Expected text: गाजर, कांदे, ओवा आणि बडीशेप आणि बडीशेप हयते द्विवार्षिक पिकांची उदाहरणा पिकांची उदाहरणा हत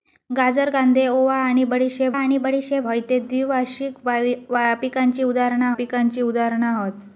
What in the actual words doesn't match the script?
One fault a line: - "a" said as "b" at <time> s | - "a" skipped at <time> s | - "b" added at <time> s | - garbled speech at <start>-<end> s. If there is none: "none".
none